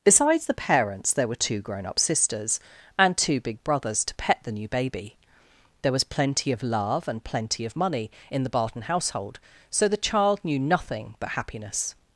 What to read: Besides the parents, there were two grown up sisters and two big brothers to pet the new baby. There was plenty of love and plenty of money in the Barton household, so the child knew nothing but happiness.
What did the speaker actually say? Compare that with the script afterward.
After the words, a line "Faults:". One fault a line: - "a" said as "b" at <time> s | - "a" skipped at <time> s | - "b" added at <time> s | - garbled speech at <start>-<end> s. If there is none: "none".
Besides the parents, there were two grown up sisters and two big brothers to pet the new baby. There was plenty of love and plenty of money in the Barton household, so the child knew nothing but happiness.
Faults:
none